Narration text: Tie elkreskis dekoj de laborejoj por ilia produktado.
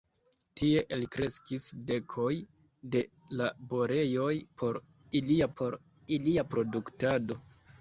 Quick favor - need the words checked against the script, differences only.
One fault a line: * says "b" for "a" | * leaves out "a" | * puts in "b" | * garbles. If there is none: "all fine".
* puts in "por ilia"